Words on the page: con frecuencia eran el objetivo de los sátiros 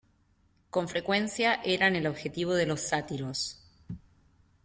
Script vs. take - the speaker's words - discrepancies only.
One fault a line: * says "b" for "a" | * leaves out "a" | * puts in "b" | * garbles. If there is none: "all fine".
all fine